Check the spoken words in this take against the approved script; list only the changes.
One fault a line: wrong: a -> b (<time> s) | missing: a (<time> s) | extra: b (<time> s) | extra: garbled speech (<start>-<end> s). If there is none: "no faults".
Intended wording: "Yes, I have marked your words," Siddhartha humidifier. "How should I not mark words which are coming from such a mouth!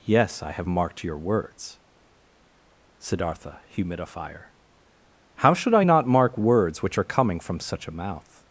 no faults